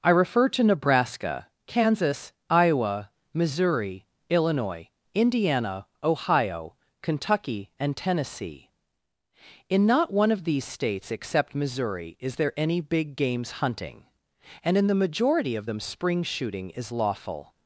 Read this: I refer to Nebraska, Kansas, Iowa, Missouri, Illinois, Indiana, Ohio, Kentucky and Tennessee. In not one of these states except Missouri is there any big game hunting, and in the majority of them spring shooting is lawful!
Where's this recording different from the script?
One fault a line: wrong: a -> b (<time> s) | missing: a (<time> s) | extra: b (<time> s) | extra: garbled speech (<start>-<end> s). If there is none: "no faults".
wrong: game -> games (13.2 s)